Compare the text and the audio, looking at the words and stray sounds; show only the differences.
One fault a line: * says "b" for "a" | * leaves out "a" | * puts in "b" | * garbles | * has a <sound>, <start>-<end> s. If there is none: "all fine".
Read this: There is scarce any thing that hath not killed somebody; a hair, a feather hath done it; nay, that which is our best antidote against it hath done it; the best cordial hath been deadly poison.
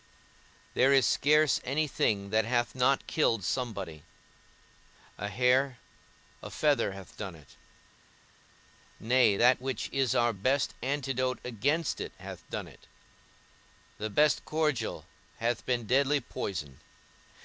all fine